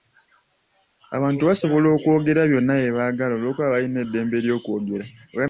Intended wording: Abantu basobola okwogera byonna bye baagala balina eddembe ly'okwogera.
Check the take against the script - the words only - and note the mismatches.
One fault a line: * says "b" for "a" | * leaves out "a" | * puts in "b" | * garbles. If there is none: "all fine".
* puts in "olw'okuba"